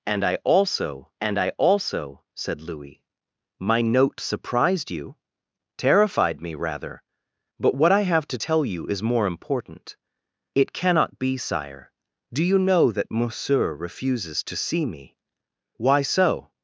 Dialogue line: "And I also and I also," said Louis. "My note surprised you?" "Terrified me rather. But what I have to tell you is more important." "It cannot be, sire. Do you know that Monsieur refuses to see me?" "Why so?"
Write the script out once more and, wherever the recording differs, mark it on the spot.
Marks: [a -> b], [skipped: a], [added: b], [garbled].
"And I also and I also," said Louis. "My note surprised you?" "Terrified me rather. But what I have to tell you is more important." "It cannot be, sire. Do you know that Monsieur refuses to see me?" "Why so?"